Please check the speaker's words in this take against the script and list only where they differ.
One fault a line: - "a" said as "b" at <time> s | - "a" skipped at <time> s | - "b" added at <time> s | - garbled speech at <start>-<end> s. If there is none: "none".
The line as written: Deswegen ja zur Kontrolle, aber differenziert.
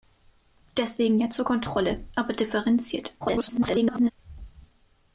- garbled speech at 3.2-4.1 s